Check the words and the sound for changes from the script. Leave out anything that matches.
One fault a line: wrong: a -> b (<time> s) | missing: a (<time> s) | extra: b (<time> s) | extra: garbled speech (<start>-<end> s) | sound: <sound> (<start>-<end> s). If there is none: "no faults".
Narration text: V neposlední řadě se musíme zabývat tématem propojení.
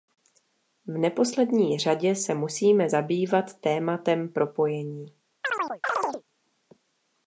sound: chirp (5.4-6.2 s)